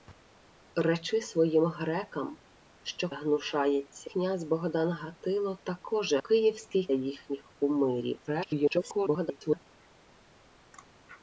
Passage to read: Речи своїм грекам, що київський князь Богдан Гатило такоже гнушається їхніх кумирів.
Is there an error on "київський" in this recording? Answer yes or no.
yes